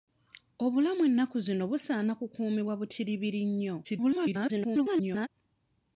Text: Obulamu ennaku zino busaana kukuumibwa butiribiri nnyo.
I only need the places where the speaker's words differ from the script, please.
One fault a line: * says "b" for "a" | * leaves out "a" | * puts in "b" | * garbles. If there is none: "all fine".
* garbles